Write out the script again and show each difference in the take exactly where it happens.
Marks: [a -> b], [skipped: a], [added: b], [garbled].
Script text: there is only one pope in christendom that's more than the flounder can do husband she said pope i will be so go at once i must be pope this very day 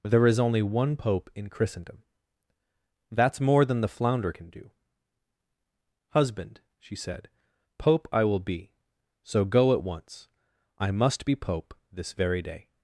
there is only one pope in christendom that's more than the flounder can do husband she said pope i will be so go at once i must be pope this very day